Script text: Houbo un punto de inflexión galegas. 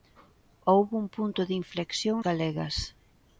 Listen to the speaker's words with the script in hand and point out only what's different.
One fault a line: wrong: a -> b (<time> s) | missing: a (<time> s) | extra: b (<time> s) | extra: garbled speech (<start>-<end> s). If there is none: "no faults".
no faults